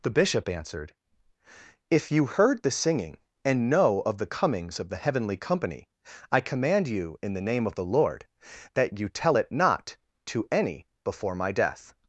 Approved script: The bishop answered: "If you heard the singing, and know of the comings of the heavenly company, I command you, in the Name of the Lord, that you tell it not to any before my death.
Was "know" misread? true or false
false